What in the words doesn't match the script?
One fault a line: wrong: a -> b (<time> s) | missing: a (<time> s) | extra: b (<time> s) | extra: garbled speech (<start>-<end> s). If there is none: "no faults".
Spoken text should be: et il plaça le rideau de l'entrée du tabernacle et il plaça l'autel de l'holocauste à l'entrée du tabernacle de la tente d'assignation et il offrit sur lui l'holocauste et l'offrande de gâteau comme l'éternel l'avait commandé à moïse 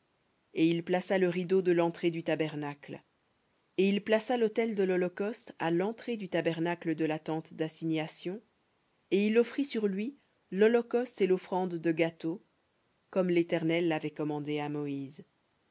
no faults